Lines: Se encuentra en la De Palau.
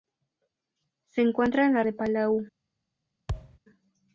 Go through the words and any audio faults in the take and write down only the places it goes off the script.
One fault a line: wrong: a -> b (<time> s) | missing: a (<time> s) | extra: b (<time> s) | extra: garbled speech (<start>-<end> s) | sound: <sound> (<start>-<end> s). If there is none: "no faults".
sound: thud (3.3-3.6 s)